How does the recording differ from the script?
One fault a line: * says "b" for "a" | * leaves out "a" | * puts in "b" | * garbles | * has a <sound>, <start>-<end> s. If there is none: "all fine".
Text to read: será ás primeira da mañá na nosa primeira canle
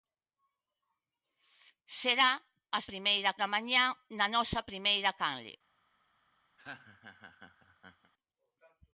* has a laugh, 6.6-8.1 s